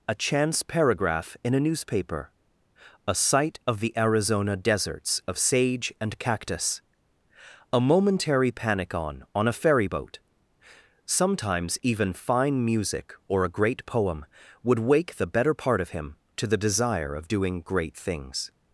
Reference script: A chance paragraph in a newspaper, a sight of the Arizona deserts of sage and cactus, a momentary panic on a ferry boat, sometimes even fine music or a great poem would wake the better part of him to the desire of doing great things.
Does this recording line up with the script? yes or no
no